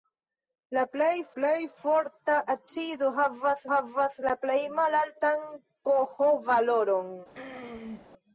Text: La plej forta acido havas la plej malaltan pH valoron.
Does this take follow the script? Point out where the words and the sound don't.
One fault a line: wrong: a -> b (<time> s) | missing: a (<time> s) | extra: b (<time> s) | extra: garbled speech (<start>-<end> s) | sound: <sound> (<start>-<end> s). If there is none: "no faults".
extra: plej (1.4 s)
extra: havas (3.7 s)
sound: throat clearing (7.3-8.1 s)